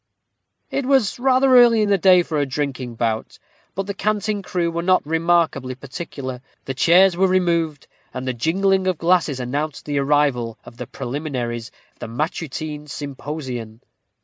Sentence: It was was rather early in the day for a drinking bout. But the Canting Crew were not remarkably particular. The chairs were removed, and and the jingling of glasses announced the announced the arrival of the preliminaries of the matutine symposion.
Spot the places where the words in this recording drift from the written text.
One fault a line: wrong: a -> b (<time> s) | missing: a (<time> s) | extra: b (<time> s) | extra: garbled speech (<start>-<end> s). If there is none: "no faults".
missing: was (1.2 s)
missing: and (8.3 s)
missing: announced the (10.0 s)